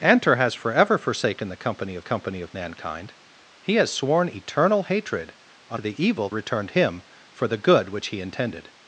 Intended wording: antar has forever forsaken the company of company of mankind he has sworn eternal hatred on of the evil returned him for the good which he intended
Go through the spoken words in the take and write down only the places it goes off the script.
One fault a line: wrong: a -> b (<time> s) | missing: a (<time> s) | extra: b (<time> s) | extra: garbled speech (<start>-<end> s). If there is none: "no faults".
no faults